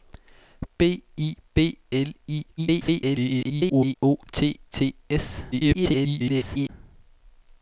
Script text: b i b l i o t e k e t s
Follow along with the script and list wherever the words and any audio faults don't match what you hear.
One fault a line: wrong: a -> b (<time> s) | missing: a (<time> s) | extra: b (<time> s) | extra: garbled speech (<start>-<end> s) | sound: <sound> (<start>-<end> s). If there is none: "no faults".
extra: garbled speech (2.6-4.0 s)
missing: e k e (4.6 s)
extra: garbled speech (5.5-6.7 s)